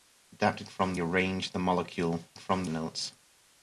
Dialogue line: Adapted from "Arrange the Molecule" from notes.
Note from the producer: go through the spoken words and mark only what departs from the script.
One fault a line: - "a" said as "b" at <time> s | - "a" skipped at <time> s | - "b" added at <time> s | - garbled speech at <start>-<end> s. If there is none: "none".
none